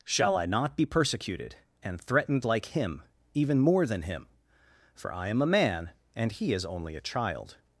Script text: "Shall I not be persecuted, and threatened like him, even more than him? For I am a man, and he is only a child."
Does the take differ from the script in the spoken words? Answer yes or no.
no